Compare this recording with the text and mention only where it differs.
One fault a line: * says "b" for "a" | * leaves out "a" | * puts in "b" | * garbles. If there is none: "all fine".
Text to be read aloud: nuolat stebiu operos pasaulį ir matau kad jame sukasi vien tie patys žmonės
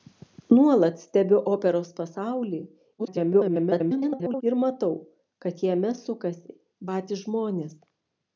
* garbles
* leaves out "vien tie"